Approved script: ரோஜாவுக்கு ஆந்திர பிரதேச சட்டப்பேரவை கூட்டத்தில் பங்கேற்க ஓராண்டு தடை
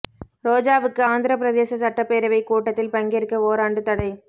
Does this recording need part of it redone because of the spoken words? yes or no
no